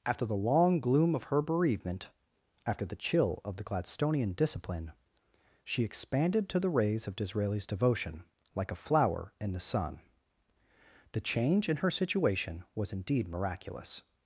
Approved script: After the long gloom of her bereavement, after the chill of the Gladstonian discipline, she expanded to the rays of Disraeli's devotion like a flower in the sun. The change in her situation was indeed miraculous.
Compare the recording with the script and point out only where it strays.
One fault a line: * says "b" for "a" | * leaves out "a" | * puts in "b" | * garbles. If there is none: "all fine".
all fine